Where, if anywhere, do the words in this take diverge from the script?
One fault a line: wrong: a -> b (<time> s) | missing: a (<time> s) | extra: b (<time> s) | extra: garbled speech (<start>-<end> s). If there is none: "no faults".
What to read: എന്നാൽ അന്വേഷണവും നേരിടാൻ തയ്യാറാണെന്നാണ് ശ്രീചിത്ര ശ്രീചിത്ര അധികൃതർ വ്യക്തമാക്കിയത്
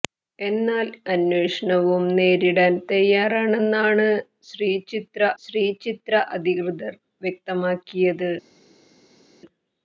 no faults